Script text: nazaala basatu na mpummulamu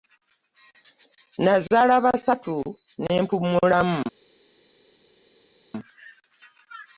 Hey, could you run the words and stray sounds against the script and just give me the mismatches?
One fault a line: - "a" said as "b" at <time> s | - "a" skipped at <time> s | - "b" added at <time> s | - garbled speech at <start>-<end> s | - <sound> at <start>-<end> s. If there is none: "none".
- "na" said as "ne" at 3.0 s